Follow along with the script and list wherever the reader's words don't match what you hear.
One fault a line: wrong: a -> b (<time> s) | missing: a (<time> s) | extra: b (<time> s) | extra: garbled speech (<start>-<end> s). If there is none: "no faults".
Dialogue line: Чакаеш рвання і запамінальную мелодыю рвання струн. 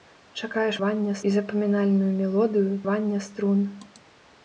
no faults